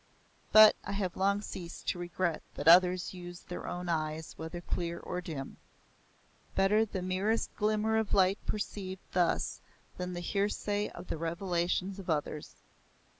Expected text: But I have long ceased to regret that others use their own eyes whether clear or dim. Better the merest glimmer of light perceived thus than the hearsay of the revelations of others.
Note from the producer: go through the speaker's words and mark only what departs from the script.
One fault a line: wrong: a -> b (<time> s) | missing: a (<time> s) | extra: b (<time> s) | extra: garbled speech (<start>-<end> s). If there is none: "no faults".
no faults